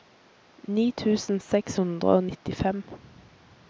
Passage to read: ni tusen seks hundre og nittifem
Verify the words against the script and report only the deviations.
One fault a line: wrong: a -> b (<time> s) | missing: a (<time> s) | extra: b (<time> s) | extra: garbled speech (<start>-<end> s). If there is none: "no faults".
no faults